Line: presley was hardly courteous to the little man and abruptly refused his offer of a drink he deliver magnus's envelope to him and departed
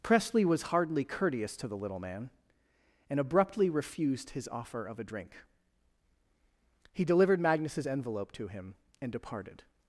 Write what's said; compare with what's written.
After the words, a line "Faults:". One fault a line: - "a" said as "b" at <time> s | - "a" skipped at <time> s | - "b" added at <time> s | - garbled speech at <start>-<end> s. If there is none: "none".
presley was hardly courteous to the little man and abruptly refused his offer of a drink he delivered magnus's envelope to him and departed
Faults:
- "deliver" said as "delivered" at 7.0 s